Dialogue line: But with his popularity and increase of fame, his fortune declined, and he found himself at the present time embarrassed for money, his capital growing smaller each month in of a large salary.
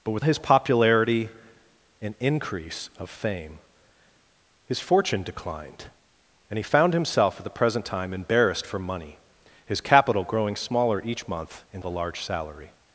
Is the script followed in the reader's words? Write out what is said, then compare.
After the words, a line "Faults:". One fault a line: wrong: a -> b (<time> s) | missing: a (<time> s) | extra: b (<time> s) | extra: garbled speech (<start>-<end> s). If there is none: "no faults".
But with his popularity and increase of fame, his fortune declined, and he found himself at the present time embarrassed for money, his capital growing smaller each month in of a large salary.
Faults:
no faults